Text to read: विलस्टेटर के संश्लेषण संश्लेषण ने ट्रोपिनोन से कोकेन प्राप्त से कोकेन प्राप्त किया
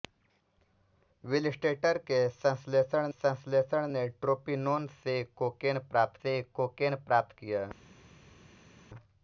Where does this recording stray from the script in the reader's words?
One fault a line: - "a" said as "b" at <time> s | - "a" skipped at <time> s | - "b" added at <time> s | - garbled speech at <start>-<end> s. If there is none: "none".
none